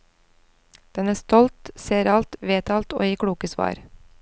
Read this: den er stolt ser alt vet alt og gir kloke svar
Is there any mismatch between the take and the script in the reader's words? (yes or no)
no